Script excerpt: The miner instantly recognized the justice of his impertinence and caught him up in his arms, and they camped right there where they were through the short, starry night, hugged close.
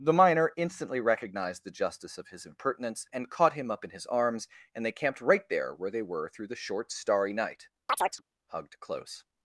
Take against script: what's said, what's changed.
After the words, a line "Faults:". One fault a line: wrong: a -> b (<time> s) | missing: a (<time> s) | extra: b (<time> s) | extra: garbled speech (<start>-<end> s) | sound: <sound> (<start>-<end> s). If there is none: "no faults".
The miner instantly recognized the justice of his impertinence and caught him up in his arms, and they camped right there where they were through the short, starry night, hugged close.
Faults:
sound: chirp (7.9-8.2 s)